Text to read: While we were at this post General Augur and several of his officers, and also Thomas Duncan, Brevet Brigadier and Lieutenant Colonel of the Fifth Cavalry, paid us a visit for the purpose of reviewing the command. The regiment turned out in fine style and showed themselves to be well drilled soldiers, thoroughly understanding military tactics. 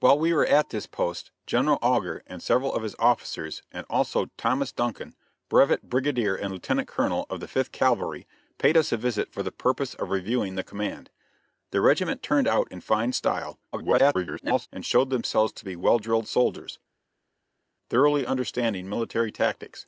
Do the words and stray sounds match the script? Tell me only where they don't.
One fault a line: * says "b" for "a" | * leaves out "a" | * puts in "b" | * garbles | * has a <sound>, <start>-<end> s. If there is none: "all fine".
* garbles